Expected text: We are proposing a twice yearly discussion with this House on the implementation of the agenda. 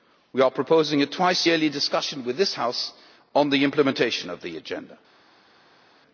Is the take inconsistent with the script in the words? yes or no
no